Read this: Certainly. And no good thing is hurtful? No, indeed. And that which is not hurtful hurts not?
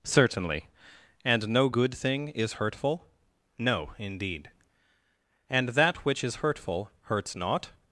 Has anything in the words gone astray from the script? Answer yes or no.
yes